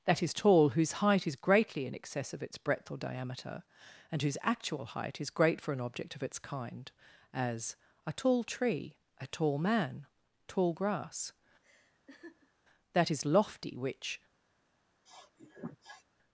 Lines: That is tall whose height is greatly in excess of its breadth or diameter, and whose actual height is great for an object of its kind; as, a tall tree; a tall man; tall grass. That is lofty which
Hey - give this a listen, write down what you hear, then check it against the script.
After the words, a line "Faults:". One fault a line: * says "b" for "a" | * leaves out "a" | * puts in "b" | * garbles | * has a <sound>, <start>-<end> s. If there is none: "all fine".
That is tall whose height is greatly in excess of its breadth or diameter, and whose actual height is great for an object of its kind; as, a tall tree; a tall man; tall grass. That is lofty which
Faults:
* has a laugh, 11.6-12.5 s
* has a sniff, 15.1-16.0 s